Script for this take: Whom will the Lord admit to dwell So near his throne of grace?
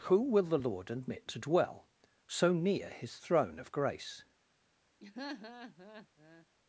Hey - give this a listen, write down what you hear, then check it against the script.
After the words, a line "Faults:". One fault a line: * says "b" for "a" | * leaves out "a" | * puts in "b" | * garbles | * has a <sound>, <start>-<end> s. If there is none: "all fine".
Who will the Lord admit to dwell So near his throne of grace?
Faults:
* says "Who" for "Whom"
* has a laugh, 5.0-6.5 s